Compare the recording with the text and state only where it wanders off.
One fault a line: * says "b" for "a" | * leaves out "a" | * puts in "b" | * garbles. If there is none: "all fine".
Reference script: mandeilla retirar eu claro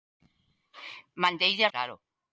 * leaves out "retirar eu"